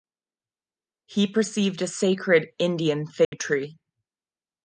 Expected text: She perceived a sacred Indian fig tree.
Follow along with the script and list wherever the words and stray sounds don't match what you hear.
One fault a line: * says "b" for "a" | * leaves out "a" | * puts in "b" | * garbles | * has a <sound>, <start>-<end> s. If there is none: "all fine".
* says "He" for "She"
* has a dropout, 3.2-3.3 s